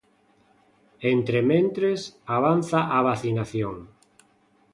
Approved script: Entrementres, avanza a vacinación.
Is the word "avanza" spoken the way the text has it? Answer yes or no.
yes